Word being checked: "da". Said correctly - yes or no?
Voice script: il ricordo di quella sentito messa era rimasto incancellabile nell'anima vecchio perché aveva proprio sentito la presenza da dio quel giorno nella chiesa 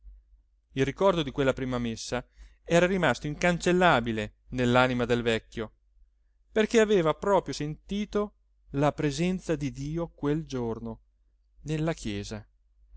no